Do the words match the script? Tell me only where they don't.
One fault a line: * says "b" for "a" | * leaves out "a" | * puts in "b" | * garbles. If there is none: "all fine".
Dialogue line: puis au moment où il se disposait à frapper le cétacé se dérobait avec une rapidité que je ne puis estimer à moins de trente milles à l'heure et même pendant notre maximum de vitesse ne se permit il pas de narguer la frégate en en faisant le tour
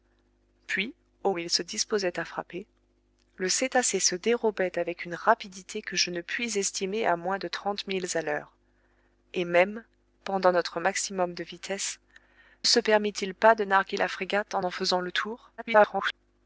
* leaves out "moment"
* leaves out "ne"
* garbles